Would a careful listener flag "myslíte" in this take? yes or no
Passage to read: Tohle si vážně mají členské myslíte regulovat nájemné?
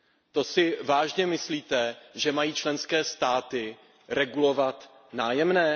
yes